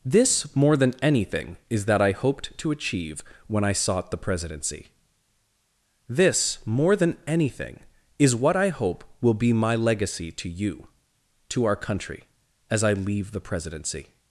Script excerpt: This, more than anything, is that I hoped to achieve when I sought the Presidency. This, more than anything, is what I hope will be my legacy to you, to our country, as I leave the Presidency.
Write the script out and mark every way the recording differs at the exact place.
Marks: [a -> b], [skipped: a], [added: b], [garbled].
This, more than anything, is that I hoped to achieve when I sought the Presidency. This, more than anything, is what I hope will be my legacy to you, to our country, as I leave the Presidency.